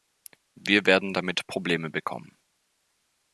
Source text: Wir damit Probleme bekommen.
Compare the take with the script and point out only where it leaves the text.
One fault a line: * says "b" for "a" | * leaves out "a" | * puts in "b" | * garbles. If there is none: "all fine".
* puts in "werden"